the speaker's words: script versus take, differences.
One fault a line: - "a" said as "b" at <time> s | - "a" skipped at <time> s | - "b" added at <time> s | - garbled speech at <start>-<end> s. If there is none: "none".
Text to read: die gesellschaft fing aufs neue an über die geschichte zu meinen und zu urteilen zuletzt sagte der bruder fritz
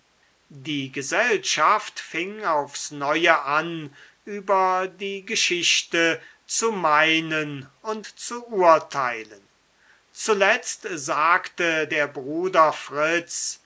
none